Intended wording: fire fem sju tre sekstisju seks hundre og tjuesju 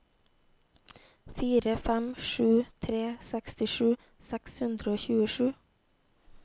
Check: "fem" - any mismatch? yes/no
no